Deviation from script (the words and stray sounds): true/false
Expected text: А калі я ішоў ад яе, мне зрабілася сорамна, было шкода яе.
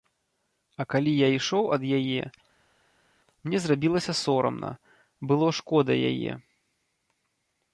false